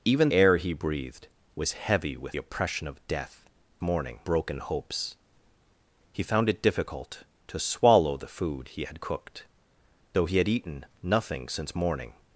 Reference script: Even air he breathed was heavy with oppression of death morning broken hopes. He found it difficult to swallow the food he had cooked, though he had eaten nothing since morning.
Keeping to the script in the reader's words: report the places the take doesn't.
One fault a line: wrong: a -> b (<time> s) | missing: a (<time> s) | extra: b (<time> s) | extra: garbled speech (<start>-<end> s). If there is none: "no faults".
no faults